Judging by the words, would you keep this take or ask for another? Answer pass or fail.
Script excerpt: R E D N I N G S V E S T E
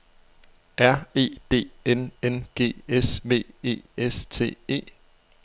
fail